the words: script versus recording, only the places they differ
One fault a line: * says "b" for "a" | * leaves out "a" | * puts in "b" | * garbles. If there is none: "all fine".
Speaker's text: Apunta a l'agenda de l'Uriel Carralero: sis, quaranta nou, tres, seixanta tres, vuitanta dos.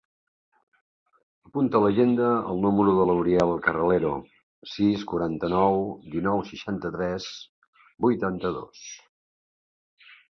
* puts in "el número"
* says "dinou" for "tres"